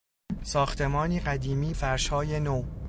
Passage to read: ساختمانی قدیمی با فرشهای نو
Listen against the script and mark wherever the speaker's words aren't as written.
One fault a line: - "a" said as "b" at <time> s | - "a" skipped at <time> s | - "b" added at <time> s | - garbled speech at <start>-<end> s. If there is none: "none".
- "با" skipped at 1.7 s